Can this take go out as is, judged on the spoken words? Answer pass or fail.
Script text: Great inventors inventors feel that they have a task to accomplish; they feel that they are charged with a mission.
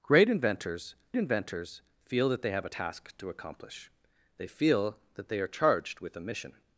pass